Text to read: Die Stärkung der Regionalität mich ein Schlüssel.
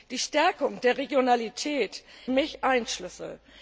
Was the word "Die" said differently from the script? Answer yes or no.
no